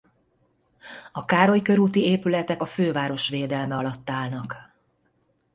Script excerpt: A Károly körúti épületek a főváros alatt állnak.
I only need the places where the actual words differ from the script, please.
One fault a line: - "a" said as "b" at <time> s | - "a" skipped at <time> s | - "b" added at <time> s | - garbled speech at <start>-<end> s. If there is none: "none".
- "védelme" added at 3.3 s